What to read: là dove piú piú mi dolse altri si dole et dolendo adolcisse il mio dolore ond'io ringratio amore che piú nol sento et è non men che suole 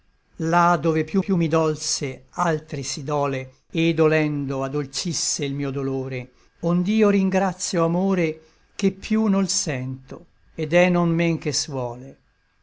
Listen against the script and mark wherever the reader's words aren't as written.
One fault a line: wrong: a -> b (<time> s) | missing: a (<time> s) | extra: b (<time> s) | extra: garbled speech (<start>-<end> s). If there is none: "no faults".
no faults